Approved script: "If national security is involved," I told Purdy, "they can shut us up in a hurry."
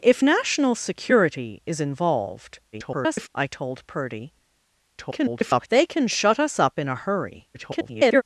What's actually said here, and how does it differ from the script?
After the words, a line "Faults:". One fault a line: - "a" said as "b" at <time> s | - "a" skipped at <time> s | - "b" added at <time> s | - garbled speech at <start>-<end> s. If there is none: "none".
"If national security is involved," [garbled] I told Purdy, [garbled] "they can shut us up in a hurry." [garbled]
Faults:
- garbled speech at 2.7-3.3 s
- garbled speech at 5.0-5.7 s
- garbled speech at 7.5-8.2 s